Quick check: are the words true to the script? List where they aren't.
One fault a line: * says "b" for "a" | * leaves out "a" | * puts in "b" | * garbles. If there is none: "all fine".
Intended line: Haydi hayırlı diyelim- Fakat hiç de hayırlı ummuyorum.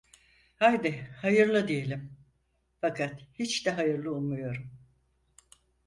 all fine